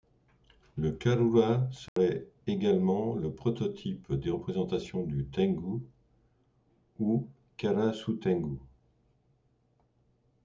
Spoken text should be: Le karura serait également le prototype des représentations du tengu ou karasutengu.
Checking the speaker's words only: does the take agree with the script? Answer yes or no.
yes